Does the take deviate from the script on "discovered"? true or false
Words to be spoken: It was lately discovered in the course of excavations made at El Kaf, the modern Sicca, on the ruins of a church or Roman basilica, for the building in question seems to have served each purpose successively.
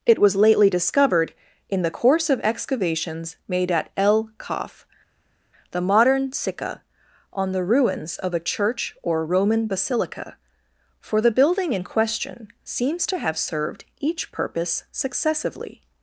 false